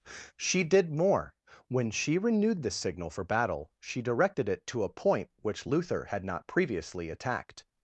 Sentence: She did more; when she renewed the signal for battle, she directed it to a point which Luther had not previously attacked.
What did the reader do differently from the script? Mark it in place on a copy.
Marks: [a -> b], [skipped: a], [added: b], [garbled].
She did more; when she renewed the signal for battle, she directed it to a point which Luther had not previously attacked.